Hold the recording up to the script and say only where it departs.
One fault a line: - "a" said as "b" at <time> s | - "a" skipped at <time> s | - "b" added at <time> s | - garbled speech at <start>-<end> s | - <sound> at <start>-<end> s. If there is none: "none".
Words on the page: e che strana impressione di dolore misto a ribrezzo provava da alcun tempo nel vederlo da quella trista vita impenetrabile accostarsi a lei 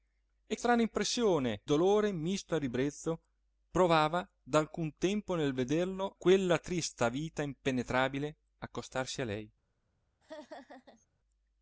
- "che" skipped at 0.6 s
- "di" skipped at 1.6 s
- "da" skipped at 6.2 s
- laugh at 10.2-11.1 s